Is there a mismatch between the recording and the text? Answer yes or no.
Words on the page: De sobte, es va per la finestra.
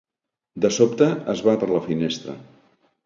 no